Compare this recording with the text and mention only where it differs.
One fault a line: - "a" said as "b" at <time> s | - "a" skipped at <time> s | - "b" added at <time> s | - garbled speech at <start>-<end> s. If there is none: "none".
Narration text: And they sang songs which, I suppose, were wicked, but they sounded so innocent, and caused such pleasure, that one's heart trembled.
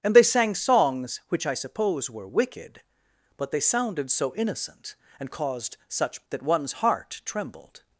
- "pleasure" skipped at 6.3 s